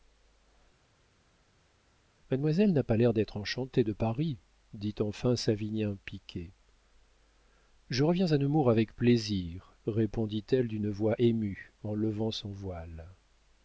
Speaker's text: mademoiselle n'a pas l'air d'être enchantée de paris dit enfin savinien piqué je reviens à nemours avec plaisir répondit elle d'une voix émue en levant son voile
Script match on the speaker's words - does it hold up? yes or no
yes